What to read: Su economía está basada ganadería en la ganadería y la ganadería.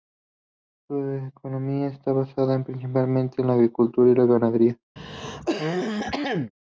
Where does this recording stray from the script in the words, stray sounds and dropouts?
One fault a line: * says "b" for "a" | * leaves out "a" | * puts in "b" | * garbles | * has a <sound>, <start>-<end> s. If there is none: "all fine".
* says "principalmente" for "ganadería"
* says "agricultura" for "ganadería"
* has a throat clearing, 5.0-6.5 s